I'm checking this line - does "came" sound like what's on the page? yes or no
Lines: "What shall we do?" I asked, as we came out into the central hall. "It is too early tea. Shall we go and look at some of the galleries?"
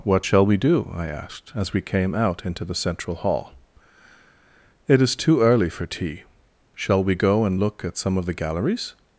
yes